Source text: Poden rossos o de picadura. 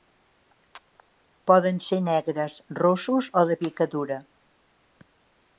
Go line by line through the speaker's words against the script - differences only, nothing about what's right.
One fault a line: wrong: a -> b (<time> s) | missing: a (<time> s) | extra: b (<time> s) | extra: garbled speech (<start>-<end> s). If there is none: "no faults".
extra: ser negres (1.9 s)